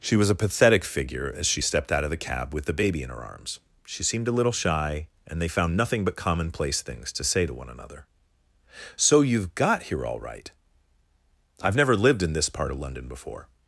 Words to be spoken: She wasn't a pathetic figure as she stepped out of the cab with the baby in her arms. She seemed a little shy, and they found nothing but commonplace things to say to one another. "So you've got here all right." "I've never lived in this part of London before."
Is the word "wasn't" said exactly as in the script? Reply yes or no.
no